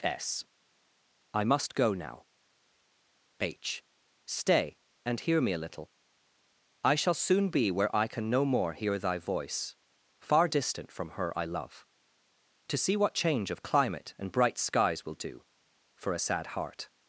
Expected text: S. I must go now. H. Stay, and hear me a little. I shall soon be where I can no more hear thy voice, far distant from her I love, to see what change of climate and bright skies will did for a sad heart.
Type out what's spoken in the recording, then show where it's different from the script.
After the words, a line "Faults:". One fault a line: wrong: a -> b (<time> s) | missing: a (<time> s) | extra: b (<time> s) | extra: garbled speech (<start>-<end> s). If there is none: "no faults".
S. I must go now. H. Stay, and hear me a little. I shall soon be where I can no more hear thy voice, far distant from her I love, to see what change of climate and bright skies will do for a sad heart.
Faults:
wrong: did -> do (15.2 s)